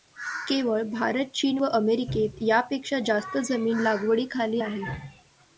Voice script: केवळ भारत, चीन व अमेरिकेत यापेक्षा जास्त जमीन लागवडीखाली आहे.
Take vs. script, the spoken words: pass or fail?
pass